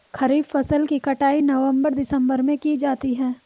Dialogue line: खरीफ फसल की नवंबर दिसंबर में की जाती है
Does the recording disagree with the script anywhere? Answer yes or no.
yes